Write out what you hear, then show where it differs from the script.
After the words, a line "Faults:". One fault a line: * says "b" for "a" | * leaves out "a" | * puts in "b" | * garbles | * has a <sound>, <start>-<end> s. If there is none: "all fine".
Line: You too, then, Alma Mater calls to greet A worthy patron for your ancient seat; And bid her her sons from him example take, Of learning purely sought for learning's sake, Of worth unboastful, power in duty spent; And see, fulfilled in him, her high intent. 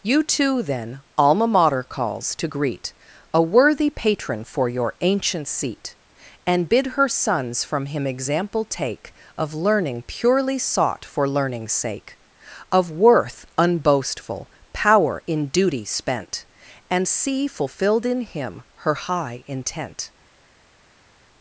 You too, then, Alma Mater calls to greet A worthy patron for your ancient seat; And bid her sons from him example take, Of learning purely sought for learning's sake, Of worth unboastful, power in duty spent; And see, fulfilled in him, her high intent.
Faults:
* leaves out "her"